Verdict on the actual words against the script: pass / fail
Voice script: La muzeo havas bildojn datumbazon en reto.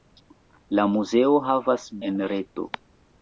fail